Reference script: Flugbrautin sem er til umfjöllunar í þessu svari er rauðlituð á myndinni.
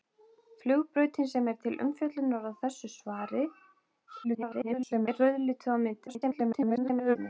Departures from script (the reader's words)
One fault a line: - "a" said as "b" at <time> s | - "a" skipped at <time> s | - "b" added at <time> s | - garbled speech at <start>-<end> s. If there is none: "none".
- garbled speech at 4.2-5.1 s
- garbled speech at 6.1-7.2 s